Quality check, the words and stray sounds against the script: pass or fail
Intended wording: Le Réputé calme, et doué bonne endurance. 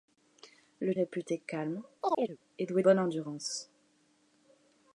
fail